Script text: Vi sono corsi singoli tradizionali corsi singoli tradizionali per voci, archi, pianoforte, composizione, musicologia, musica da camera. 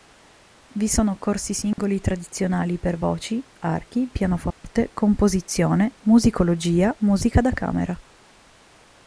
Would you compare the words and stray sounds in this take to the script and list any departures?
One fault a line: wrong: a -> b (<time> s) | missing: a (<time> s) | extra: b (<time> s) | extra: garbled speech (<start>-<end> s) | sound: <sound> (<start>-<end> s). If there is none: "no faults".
sound: dropout (1.7-1.8 s)
missing: corsi singoli tradizionali (2.8 s)
sound: dropout (4.5-4.6 s)